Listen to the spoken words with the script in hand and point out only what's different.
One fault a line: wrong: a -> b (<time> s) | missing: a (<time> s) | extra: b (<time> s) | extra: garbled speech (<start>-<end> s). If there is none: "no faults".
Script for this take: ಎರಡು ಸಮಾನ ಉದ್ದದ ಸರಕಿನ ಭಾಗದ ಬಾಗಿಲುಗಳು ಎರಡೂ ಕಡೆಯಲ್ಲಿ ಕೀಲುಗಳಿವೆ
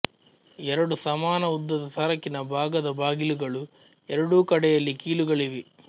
no faults